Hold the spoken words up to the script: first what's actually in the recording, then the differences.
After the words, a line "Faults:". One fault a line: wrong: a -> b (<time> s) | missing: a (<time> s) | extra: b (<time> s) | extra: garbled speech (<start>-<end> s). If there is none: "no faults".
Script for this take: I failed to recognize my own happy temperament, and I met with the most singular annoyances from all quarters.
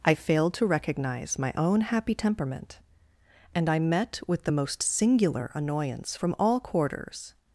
I failed to recognize my own happy temperament, and I met with the most singular annoyance from all quarters.
Faults:
wrong: annoyances -> annoyance (5.5 s)